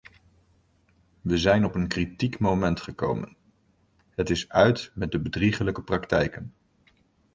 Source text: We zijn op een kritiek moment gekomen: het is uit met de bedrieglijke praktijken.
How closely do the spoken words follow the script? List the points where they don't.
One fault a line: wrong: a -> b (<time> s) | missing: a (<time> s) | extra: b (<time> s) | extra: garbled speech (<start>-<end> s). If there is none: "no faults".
no faults